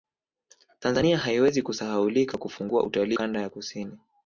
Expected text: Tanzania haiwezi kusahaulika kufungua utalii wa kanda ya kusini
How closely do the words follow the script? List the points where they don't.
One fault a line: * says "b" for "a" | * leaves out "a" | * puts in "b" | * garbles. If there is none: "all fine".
* leaves out "wa"